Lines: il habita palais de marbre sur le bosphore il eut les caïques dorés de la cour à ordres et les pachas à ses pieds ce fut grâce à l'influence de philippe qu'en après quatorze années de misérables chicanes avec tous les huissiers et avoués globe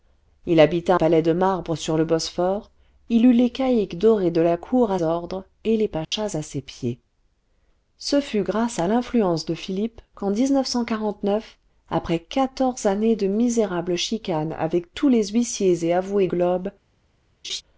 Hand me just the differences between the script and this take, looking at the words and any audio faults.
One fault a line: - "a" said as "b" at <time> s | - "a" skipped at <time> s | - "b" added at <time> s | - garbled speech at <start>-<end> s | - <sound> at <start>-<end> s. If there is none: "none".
- dropout at 6.0-6.1 s
- laugh at 17.4-17.6 s